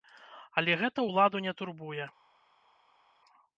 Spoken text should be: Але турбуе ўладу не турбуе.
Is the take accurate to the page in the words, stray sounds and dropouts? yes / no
no